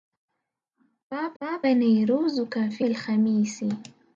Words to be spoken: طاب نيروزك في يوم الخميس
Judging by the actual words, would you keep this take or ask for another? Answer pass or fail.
fail